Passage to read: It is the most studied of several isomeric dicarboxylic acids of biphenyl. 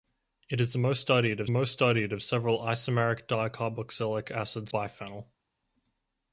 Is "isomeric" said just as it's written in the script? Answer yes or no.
yes